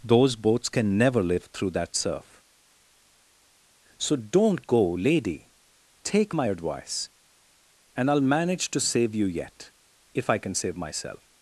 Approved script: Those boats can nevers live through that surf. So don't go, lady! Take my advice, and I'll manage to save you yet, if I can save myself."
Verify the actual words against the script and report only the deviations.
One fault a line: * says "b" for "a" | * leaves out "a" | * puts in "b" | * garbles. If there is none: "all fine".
* says "never" for "nevers"